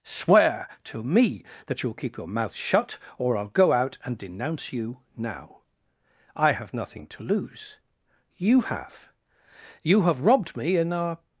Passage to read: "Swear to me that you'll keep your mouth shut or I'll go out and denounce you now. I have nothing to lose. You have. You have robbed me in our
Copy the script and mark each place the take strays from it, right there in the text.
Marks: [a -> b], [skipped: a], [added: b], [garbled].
"Swear to me that you'll keep your mouth shut or I'll go out and denounce you now. I have nothing to lose. You have. You have robbed me in our